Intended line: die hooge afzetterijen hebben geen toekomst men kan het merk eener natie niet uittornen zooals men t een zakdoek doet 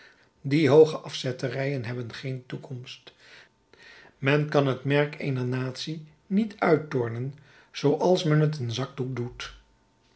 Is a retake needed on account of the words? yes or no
no